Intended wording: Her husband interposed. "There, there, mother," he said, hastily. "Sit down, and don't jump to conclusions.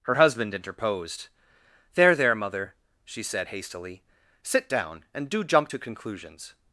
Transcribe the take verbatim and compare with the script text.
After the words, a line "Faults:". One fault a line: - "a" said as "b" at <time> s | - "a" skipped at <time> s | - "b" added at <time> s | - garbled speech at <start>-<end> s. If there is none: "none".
Her husband interposed. "There, there, mother," she said, hastily. "Sit down, and do jump to conclusions.
Faults:
- "he" said as "she" at 3.0 s
- "don't" said as "do" at 5.3 s